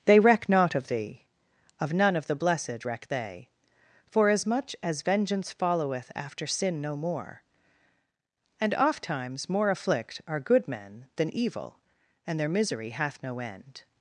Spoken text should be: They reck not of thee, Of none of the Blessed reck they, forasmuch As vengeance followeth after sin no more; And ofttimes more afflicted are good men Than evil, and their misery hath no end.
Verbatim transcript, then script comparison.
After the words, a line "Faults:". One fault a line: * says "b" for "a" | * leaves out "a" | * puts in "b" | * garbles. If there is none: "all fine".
They reck not of thee, Of none of the Blessed reck they, forasmuch As vengeance followeth after sin no more; And ofttimes more afflict are good men Than evil, and their misery hath no end.
Faults:
* says "afflict" for "afflicted"